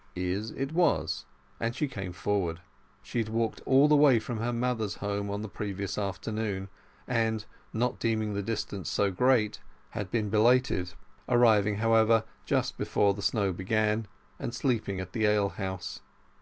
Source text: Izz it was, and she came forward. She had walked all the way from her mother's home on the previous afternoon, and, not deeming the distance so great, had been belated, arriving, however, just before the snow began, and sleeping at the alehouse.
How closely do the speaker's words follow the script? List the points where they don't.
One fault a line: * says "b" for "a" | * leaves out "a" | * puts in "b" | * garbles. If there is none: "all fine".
all fine